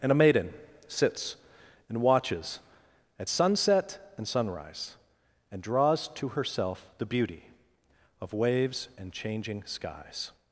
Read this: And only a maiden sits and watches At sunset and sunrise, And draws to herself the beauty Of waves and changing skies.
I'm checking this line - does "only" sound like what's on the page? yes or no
no